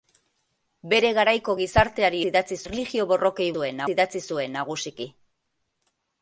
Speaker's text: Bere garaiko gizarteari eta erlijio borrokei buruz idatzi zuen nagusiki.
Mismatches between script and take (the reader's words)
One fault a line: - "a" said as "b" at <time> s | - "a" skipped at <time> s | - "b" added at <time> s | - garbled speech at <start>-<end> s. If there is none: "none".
- "eta" said as "idatzi" at 2.3 s
- "buruz" said as "zuen" at 3.6 s